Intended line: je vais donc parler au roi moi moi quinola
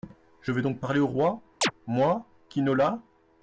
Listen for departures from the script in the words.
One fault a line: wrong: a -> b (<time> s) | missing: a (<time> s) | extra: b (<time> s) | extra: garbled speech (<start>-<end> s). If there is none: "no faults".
missing: moi (2.3 s)